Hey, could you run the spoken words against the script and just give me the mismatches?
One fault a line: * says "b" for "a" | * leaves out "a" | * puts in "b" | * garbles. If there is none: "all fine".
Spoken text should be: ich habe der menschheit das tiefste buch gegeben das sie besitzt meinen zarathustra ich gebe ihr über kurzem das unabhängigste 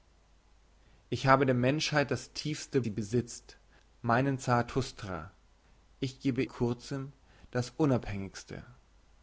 * leaves out "buch gegeben das"
* leaves out "ihr über"